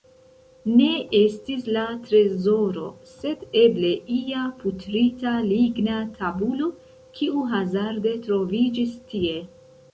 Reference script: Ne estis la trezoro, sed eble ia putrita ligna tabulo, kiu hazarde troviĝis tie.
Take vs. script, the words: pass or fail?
pass